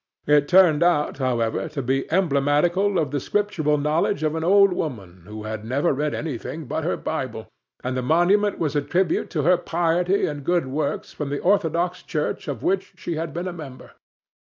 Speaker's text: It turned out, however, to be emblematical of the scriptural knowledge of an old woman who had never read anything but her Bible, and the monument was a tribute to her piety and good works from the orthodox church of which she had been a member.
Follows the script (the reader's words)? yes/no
yes